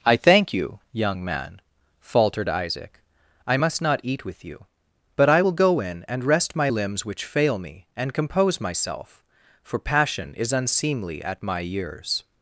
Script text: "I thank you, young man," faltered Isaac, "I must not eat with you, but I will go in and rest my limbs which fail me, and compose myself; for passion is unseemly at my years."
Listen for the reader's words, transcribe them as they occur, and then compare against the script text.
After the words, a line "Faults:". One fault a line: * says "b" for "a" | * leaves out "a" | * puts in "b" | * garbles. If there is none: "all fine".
"I thank you, young man," faltered Isaac, "I must not eat with you, but I will go in and rest my limbs which fail me, and compose myself; for passion is unseemly at my years."
Faults:
all fine